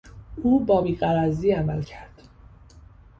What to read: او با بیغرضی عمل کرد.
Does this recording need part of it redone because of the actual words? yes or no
no